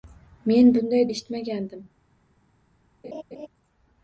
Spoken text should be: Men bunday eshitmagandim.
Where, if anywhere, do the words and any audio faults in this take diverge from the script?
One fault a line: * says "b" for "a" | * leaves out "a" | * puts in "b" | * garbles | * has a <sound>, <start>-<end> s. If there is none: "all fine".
* has a laugh, 3.0-3.5 s